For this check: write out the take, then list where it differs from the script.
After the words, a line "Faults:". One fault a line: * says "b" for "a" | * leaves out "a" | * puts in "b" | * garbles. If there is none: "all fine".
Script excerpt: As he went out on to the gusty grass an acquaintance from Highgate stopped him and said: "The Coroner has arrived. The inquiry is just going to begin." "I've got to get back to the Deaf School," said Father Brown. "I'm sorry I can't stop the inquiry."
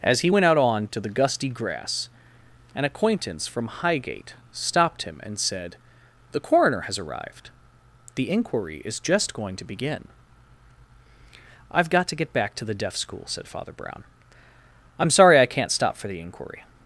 As he went out on to the gusty grass an acquaintance from Highgate stopped him and said: "The Coroner has arrived. The inquiry is just going to begin." "I've got to get back to the Deaf School," said Father Brown. "I'm sorry I can't stop for the inquiry."
Faults:
* puts in "for"